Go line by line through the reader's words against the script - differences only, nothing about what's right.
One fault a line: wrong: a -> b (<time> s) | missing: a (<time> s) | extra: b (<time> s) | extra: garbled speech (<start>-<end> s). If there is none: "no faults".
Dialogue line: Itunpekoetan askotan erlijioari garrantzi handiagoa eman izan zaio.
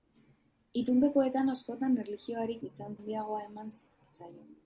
wrong: garrantzi -> izan (2.7 s)
missing: izan (3.7 s)